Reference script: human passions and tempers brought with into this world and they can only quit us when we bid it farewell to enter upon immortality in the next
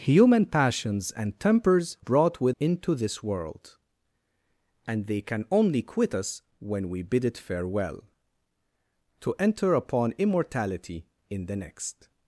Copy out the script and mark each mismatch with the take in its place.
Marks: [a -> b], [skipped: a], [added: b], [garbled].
human passions and tempers brought with into this world and they can only quit us when we bid it farewell to enter upon immortality in the next